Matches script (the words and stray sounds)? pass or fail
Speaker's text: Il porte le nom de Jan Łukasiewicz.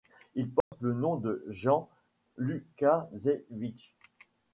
fail